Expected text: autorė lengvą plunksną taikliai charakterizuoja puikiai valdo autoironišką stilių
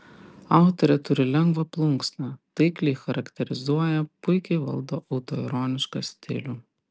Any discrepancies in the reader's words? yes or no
yes